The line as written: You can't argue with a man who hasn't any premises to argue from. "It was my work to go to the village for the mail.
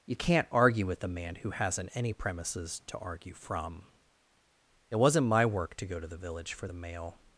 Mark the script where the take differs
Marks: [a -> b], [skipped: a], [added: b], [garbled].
You can't argue with a man who hasn't any premises to argue from. "It [was -> wasn't] my work to go to the village for the mail.